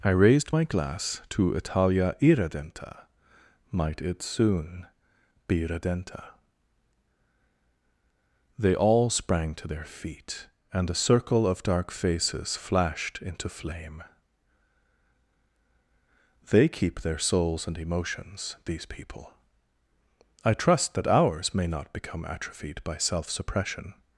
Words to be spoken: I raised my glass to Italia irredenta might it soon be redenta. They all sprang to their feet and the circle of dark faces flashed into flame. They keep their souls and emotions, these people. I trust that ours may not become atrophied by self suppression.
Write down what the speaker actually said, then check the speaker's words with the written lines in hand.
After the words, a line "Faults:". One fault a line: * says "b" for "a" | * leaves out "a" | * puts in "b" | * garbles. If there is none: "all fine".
I raised my glass to Italia irredenta might it soon be redenta. They all sprang to their feet and a circle of dark faces flashed into flame. They keep their souls and emotions, these people. I trust that ours may not become atrophied by self suppression.
Faults:
* says "a" for "the"